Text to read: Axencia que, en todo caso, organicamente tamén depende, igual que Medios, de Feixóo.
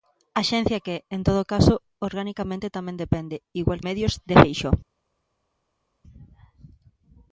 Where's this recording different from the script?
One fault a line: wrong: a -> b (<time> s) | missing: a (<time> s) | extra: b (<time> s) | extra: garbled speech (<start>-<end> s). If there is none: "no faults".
missing: que (3.8 s)